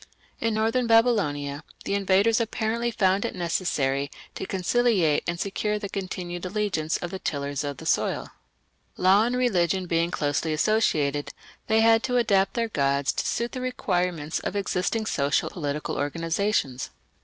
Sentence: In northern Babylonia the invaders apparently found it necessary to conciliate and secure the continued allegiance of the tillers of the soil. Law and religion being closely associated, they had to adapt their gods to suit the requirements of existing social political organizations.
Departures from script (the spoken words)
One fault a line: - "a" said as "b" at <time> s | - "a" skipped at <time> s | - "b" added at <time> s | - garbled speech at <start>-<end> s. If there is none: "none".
none